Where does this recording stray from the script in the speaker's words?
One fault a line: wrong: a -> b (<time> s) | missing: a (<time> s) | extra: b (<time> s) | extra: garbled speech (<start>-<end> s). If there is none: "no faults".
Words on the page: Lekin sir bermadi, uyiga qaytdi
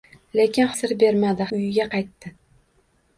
no faults